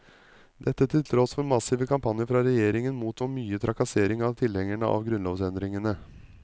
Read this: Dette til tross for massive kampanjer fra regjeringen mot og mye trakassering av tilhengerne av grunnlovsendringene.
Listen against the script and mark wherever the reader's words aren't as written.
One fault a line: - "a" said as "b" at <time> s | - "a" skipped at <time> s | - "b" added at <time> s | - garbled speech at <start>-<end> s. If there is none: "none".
none